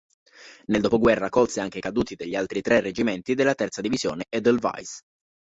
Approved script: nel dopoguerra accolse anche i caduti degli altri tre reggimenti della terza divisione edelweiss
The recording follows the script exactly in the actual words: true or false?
true